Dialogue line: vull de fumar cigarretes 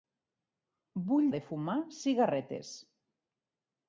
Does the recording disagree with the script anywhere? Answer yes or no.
no